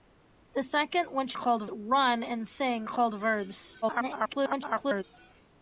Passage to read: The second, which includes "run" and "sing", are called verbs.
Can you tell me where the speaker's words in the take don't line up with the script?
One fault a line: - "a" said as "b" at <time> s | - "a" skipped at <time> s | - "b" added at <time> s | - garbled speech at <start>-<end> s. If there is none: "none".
- "includes" said as "called" at 1.3 s
- "are" skipped at 2.9 s
- garbled speech at 3.8-5.0 s